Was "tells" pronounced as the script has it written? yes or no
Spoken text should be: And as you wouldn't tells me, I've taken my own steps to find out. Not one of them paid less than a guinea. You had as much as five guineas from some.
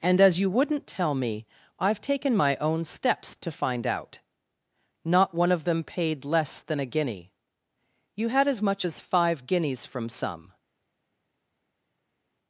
no